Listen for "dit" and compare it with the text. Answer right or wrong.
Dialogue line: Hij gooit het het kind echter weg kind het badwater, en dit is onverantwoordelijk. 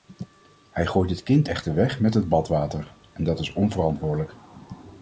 wrong